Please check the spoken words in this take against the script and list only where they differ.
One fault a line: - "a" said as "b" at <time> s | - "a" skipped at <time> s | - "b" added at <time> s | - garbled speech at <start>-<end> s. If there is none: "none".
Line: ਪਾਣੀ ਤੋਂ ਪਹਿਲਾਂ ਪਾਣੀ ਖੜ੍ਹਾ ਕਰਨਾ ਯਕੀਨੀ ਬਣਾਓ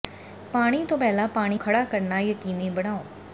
none